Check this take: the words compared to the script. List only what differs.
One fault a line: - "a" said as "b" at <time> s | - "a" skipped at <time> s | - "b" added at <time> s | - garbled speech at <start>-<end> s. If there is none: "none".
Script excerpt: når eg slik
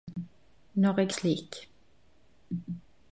none